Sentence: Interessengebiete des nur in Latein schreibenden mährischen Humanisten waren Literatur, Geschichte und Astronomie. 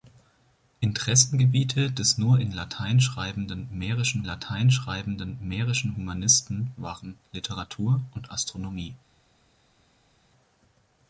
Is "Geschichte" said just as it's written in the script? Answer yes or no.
no